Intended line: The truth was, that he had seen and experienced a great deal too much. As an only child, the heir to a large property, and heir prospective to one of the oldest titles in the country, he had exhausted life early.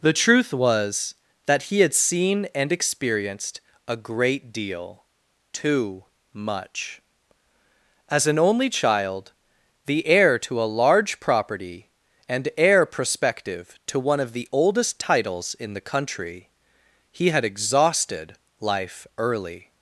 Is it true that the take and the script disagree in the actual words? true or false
false